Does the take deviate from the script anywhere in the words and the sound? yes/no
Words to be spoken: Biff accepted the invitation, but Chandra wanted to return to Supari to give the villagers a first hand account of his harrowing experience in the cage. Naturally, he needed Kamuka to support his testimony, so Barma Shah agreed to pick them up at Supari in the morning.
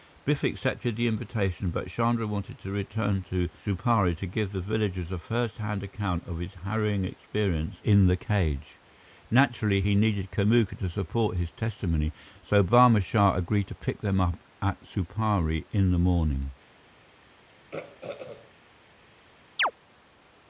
yes